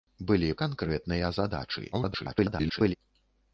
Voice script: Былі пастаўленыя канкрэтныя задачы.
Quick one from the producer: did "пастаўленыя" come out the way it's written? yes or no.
no